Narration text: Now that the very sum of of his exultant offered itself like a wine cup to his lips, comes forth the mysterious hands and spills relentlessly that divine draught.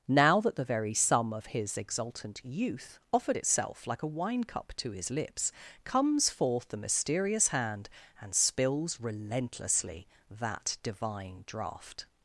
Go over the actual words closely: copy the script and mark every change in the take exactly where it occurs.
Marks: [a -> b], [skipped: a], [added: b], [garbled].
Now that the very sum of [skipped: of] his exultant [added: youth] offered itself like a wine cup to his lips, comes forth the mysterious [hands -> hand] and spills relentlessly that divine draught.